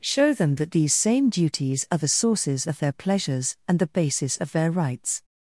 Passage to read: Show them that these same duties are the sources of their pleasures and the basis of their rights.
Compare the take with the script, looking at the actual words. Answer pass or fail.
pass